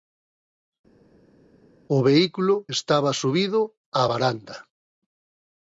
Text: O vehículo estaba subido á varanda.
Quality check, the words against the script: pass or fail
pass